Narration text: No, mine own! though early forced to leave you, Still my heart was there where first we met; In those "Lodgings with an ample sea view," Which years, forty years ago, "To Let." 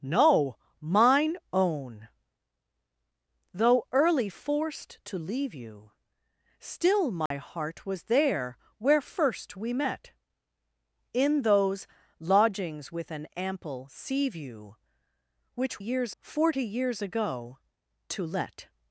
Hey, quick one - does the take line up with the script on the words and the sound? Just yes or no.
no